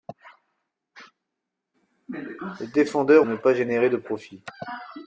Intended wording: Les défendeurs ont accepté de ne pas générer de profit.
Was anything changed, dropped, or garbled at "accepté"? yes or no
yes